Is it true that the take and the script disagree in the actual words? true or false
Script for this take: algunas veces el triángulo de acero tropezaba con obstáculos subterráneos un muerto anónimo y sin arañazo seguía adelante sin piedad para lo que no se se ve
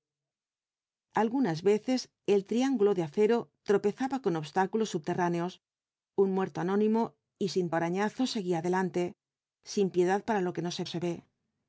false